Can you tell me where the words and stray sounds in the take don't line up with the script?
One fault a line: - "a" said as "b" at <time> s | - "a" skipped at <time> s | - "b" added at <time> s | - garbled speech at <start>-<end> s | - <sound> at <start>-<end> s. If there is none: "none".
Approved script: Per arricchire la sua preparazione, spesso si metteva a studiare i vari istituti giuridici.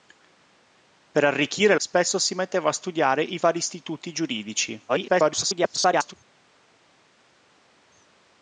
- "la sua preparazione" skipped at 1.8 s
- garbled speech at 4.9-6.1 s